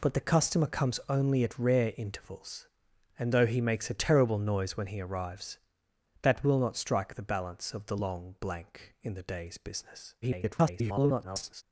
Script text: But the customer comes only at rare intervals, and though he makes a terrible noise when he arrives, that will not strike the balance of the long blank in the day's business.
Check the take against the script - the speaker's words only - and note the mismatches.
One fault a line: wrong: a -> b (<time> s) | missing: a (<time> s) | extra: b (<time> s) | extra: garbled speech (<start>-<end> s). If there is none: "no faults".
extra: garbled speech (10.2-11.6 s)